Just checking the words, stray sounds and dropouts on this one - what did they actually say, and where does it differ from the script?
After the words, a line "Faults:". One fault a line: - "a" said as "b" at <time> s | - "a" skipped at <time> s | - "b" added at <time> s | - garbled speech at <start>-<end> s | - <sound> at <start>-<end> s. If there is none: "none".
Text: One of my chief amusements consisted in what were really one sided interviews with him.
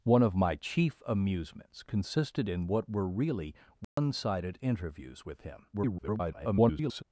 One of my chief amusements consisted in what were really one sided interviews with him. [garbled]
Faults:
- dropout at 3.8-4.0 s
- garbled speech at 5.7-7.0 s